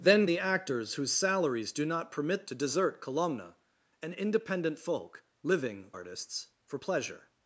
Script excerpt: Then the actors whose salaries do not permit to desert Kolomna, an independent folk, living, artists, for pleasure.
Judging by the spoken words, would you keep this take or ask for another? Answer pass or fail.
pass